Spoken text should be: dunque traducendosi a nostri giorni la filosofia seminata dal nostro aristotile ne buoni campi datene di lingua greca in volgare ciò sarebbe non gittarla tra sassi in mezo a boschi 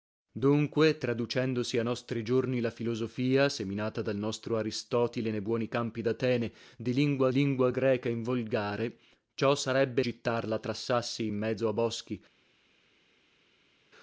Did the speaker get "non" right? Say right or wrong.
wrong